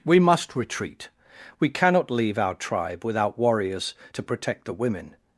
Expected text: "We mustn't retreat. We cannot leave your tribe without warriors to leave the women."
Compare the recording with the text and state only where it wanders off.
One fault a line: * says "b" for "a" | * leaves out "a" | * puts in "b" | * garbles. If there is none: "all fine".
* says "must" for "mustn't"
* says "our" for "your"
* says "protect" for "leave"